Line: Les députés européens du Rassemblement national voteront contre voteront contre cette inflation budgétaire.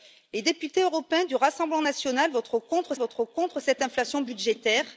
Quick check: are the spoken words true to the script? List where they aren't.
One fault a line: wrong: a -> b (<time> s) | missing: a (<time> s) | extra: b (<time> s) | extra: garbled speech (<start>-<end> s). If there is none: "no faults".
no faults